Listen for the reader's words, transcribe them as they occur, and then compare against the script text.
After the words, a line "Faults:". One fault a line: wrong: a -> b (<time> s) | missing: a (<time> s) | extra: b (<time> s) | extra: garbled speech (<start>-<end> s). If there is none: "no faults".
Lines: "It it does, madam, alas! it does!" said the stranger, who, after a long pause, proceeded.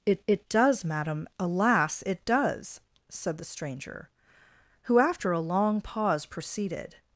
"It it does, madam, alas! it does!" said the stranger, who, after a long pause, proceeded.
Faults:
no faults